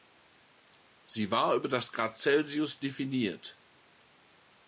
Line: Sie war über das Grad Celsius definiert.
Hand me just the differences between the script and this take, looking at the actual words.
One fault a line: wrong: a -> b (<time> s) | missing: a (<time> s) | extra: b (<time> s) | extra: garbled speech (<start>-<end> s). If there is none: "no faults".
no faults